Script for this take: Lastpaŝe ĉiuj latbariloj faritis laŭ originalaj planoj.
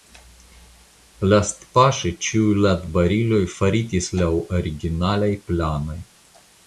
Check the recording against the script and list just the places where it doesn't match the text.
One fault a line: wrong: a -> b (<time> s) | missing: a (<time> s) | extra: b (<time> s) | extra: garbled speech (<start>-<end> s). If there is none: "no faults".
no faults